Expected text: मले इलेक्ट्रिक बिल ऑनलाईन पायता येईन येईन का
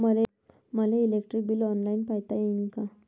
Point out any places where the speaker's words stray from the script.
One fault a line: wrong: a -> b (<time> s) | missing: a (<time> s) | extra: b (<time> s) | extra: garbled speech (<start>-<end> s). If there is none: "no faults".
missing: येईन (2.7 s)